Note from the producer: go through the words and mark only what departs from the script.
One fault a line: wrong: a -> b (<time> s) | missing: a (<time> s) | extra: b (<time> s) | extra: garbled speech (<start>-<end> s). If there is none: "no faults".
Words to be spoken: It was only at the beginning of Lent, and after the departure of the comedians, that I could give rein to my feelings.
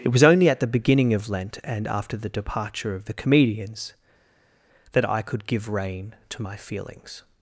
no faults